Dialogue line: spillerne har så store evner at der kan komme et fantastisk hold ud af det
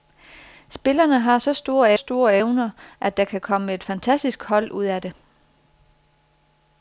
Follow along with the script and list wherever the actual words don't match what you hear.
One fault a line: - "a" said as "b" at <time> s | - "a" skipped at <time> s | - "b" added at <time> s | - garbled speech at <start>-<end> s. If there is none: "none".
- "store" added at 1.9 s